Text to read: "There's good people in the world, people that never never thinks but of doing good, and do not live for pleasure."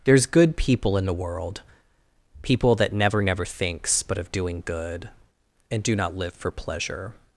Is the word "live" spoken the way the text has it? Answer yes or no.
yes